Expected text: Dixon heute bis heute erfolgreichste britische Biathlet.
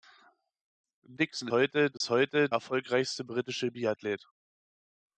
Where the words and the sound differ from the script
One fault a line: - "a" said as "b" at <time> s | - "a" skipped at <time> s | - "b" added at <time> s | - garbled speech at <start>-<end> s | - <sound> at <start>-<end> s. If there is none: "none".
- dropout at 2.0-2.0 s